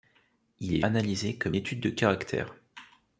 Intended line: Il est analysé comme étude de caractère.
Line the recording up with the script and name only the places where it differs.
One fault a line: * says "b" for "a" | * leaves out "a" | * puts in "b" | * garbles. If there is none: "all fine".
all fine